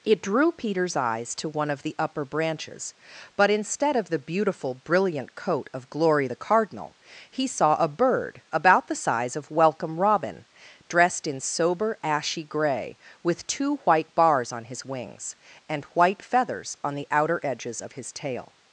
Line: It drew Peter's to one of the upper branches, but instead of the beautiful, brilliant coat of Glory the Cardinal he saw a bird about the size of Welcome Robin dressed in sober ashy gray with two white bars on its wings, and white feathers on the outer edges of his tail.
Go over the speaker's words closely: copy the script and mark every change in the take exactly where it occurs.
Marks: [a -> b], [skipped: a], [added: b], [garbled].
It drew Peter's [added: eyes] to one of the upper branches, but instead of the beautiful, brilliant coat of Glory the Cardinal he saw a bird about the size of Welcome Robin dressed in sober ashy gray with two white bars on [its -> his] wings, and white feathers on the outer edges of his tail.